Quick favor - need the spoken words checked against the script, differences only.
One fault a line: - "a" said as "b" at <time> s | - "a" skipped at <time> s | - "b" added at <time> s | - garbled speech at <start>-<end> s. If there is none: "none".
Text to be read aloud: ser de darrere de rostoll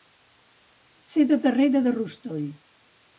none